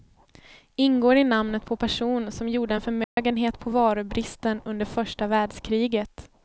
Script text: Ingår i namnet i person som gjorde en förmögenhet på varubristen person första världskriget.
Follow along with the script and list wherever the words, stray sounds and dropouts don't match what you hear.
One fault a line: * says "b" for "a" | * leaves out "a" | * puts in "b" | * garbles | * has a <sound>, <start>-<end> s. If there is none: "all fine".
* says "på" for "i"
* has a dropout, 3.0-3.2 s
* says "under" for "person"